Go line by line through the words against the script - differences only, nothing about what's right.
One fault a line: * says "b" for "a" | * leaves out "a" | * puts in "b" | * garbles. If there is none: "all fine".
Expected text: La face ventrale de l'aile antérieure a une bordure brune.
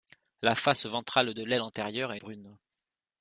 * leaves out "une bordure"